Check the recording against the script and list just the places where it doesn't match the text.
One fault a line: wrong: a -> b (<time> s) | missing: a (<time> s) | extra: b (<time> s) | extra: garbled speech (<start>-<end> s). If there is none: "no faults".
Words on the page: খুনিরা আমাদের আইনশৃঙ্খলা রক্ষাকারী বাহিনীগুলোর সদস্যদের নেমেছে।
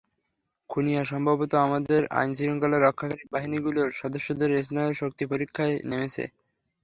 extra: সম্ভবত (1.1 s)
extra: স্নায়ুর শক্তি পরীক্ষায় (4.6 s)